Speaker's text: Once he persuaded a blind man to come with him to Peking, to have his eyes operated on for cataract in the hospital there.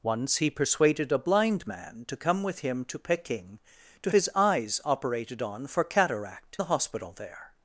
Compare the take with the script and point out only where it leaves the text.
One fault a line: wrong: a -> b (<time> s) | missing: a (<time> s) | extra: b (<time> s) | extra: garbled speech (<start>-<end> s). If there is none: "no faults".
missing: have (4.1 s)
missing: in (6.6 s)